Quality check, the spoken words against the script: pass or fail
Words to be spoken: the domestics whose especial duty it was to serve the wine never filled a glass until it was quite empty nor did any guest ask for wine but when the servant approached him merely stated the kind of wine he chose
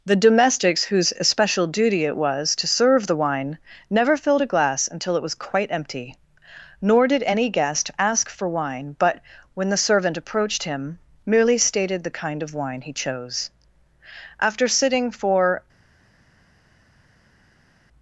fail